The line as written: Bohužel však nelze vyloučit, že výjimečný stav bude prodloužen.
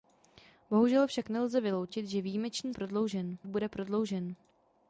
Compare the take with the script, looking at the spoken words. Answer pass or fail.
fail